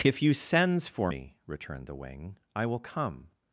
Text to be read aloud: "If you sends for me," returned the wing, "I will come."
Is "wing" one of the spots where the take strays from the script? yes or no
no